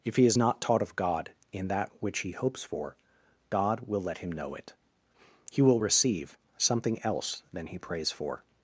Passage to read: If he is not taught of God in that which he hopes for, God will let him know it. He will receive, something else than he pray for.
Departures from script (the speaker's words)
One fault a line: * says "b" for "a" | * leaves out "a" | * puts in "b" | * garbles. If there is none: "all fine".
* says "prays" for "pray"